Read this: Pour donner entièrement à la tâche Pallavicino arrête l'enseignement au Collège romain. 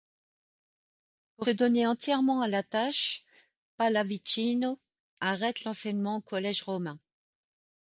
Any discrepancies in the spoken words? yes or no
no